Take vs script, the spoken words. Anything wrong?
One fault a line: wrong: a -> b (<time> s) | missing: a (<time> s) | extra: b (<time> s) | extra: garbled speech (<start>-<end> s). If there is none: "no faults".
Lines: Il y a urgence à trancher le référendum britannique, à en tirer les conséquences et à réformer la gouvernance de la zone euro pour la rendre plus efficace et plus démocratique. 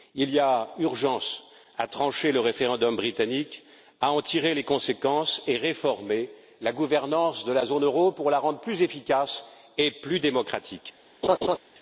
no faults